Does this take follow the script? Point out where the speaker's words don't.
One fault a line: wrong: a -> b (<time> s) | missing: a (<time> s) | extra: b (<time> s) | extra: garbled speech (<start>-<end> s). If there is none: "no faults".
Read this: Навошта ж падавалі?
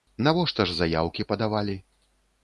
extra: заяўкі (0.8 s)